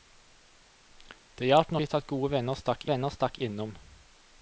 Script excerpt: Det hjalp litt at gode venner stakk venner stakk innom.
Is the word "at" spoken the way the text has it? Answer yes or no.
yes